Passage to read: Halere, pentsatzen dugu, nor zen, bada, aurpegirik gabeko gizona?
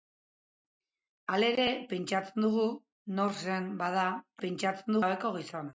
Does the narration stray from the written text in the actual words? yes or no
yes